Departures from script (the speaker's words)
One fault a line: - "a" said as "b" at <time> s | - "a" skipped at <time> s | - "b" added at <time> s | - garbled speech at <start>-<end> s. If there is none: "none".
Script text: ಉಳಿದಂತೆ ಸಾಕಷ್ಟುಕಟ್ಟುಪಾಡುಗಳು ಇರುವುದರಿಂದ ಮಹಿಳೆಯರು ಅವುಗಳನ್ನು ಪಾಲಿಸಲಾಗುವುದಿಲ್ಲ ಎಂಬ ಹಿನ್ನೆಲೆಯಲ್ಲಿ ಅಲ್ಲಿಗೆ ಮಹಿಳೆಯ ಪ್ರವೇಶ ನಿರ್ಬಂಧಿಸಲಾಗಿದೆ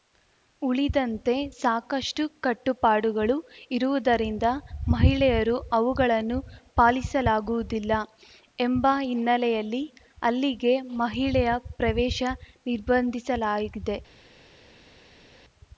none